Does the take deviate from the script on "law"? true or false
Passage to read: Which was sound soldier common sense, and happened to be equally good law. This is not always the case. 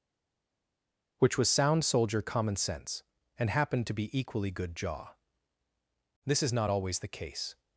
true